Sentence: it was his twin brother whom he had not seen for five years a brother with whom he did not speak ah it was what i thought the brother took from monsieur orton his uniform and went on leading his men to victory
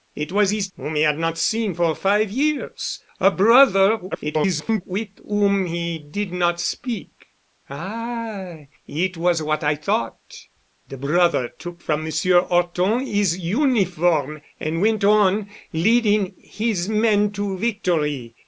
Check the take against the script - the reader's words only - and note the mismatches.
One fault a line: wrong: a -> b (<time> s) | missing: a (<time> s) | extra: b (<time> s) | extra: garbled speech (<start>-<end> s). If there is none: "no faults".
missing: twin brother (0.7 s)
extra: garbled speech (4.1-4.8 s)